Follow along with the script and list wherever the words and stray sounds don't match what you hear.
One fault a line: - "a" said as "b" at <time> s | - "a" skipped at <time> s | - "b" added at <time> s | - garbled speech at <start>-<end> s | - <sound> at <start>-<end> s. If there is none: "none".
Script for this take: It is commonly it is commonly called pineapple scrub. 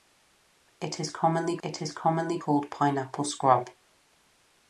none